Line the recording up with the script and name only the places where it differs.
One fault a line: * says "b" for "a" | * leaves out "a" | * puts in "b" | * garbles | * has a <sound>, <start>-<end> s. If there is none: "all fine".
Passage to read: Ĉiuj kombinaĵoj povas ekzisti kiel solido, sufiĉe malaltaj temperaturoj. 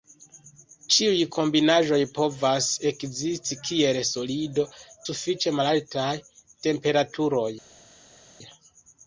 all fine